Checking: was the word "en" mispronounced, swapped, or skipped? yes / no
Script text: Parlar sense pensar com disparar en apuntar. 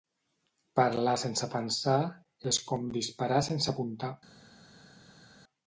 yes